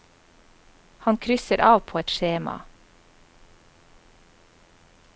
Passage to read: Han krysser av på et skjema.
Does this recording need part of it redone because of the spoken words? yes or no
no